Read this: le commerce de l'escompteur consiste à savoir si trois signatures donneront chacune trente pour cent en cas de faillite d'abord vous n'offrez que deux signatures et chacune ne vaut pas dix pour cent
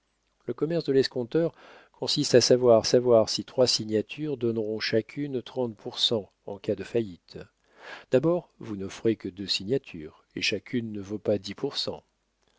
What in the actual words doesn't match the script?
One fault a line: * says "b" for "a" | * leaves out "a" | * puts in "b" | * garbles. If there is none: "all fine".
* puts in "savoir"